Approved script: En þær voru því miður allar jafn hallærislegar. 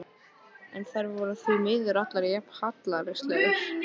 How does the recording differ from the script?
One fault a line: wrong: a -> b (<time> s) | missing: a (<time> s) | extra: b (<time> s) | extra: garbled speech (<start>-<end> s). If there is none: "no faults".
no faults